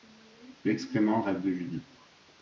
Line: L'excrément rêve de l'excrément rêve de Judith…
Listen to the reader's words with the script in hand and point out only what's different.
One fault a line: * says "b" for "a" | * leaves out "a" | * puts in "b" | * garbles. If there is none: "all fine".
* leaves out "l'excrément rêve de"